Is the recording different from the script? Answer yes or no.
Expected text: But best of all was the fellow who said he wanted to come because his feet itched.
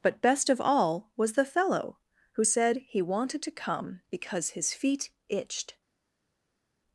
no